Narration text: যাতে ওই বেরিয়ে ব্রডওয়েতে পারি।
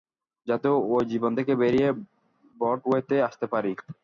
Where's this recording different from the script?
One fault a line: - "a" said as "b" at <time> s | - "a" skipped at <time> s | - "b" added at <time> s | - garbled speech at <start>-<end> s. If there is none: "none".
- "জীবন থেকে" added at 1.1 s
- "আসতে" added at 3.3 s